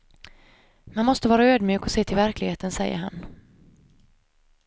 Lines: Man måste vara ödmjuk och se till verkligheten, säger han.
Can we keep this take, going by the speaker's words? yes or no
yes